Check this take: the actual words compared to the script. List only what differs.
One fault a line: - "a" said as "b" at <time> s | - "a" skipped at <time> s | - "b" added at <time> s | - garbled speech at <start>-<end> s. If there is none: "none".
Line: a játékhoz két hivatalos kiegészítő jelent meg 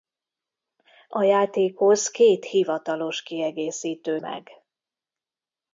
- "jelent" skipped at 4.2 s